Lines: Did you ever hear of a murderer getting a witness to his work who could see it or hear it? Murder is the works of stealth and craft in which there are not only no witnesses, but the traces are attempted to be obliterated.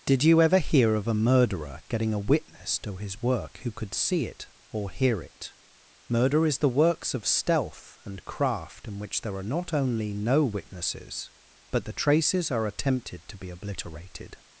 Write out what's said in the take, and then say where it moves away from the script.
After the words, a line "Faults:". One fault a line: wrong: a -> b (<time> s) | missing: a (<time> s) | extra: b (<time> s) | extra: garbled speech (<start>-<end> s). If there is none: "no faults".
Did you ever hear of a murderer getting a witness to his work who could see it or hear it? Murder is the works of stealth and craft in which there are not only no witnesses, but the traces are attempted to be obliterated.
Faults:
no faults